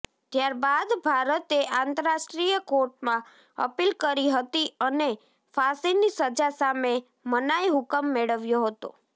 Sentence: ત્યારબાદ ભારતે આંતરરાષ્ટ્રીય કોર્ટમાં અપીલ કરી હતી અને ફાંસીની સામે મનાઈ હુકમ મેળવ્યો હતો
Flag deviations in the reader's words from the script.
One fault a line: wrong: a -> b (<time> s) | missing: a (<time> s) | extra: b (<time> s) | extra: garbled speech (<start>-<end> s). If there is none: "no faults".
extra: સજા (6.2 s)